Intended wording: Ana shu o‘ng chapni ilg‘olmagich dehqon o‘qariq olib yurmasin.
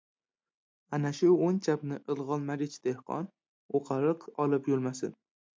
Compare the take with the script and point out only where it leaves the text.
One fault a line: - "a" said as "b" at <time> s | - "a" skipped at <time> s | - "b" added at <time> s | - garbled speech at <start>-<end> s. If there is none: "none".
none